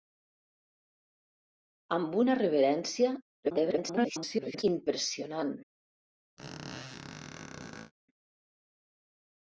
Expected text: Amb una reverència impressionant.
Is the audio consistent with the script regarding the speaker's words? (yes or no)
no